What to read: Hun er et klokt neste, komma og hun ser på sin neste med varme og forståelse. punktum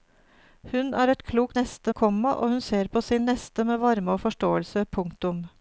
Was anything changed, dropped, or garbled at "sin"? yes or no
no